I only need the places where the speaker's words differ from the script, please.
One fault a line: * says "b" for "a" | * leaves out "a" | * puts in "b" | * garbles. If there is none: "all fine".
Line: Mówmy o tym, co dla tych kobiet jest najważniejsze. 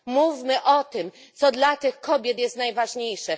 all fine